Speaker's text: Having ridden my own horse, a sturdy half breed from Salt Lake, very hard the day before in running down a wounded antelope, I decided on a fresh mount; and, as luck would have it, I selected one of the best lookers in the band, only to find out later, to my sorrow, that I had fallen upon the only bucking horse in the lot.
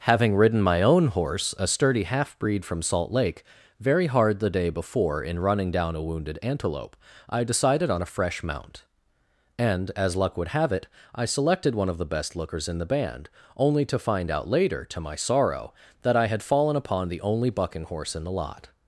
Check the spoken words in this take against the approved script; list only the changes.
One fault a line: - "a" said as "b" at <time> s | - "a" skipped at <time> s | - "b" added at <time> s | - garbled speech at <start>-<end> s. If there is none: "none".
none